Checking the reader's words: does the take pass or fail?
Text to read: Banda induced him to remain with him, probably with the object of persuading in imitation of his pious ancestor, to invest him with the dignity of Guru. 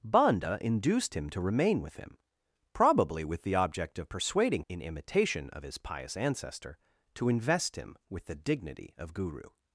pass